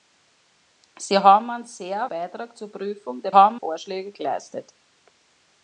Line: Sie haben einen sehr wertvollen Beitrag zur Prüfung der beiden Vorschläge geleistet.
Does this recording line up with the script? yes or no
no